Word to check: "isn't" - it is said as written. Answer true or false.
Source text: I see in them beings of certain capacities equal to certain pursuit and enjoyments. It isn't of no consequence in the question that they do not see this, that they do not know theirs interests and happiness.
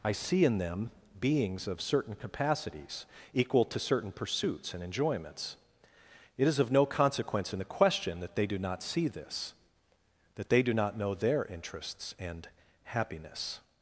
false